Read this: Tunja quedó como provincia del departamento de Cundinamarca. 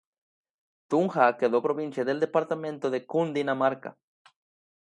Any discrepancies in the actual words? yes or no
yes